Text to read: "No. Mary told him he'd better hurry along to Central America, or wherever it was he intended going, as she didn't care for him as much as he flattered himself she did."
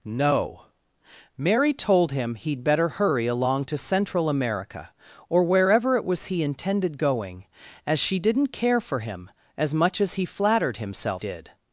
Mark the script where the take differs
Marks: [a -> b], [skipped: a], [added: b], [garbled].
"No. Mary told him he'd better hurry along to Central America, or wherever it was he intended going, as she didn't care for him as much as he flattered himself [skipped: she] did."